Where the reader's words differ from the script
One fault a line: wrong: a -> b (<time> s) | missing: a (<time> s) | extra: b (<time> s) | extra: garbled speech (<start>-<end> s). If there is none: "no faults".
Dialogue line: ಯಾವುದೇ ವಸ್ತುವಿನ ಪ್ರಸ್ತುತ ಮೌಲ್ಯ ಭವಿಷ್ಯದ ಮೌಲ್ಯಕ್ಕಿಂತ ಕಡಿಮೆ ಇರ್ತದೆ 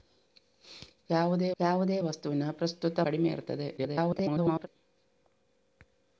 extra: ಯಾವುದೇ (1.6 s)
missing: ಮೌಲ್ಯ ಭವಿಷ್ಯದ ಮೌಲ್ಯಕ್ಕಿಂತ (3.0 s)
extra: garbled speech (3.8-4.7 s)